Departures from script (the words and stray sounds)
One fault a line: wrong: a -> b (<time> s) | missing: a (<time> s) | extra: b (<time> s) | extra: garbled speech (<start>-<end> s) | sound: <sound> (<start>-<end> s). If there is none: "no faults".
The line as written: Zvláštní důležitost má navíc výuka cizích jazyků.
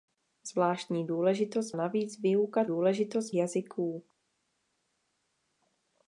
missing: má (1.7 s)
wrong: cizích -> důležitost (2.7 s)